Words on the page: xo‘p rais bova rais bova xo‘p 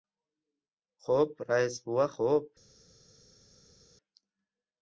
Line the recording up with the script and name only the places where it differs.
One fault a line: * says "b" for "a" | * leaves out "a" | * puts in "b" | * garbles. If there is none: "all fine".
* leaves out "rais bova"